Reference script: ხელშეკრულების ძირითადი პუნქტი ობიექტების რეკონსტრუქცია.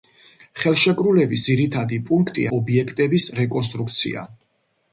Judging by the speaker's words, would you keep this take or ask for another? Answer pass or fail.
pass